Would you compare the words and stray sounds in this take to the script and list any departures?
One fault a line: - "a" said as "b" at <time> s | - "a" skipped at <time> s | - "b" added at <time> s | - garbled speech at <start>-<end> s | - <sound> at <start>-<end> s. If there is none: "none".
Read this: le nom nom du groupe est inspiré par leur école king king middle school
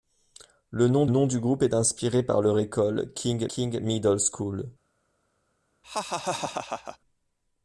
- laugh at 5.8-7.0 s